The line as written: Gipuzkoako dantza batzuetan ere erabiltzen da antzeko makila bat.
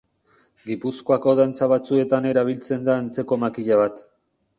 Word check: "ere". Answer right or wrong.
wrong